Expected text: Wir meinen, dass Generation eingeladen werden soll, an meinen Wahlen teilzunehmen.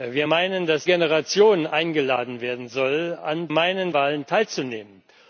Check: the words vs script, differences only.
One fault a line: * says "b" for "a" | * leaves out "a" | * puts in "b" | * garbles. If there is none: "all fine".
all fine